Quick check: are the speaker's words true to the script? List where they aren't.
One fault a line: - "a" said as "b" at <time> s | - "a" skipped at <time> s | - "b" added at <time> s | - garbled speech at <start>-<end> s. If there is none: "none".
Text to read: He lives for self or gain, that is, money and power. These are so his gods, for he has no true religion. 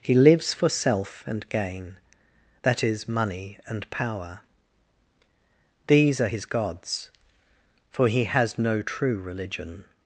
- "or" said as "and" at 1.3 s
- "so" skipped at 6.3 s